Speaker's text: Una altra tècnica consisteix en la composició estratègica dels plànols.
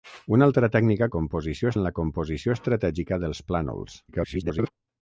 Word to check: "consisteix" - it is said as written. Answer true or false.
false